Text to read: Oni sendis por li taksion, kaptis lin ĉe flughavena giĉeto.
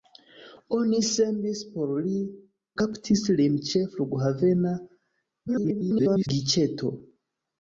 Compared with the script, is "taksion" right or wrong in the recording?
wrong